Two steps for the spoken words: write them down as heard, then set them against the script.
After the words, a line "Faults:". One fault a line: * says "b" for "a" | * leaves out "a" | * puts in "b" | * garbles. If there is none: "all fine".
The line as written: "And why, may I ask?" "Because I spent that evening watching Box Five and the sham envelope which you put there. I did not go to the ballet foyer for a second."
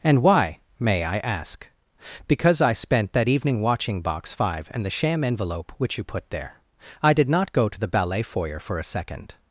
"And why, may I ask?" "Because I spent that evening watching Box Five and the sham envelope which you put there. I did not go to the ballet foyer for a second."
Faults:
all fine